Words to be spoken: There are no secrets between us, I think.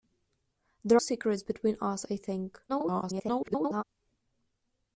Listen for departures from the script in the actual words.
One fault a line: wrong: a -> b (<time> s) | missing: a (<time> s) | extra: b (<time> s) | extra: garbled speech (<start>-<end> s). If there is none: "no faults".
missing: are no (1.0 s)
extra: garbled speech (2.7-3.8 s)